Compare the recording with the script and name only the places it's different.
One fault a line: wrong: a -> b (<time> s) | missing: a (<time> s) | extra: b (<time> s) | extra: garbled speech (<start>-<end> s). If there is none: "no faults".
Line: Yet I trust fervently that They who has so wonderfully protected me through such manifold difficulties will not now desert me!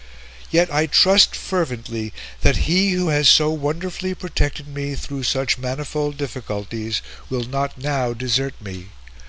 wrong: They -> He (2.7 s)